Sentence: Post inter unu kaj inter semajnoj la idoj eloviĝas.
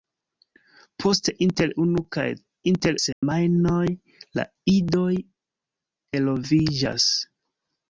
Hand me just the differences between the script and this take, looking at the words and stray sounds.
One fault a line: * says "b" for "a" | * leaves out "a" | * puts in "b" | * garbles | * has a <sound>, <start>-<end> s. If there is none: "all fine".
* has a dropout, 3.1-3.2 s